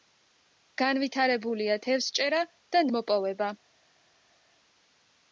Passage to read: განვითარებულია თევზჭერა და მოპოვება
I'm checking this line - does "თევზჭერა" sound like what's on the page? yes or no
yes